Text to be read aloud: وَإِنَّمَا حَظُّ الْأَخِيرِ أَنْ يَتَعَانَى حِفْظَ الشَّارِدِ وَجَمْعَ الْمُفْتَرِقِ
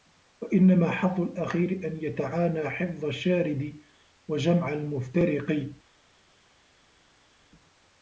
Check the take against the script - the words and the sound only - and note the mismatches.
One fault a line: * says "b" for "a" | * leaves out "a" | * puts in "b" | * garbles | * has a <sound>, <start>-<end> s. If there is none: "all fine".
all fine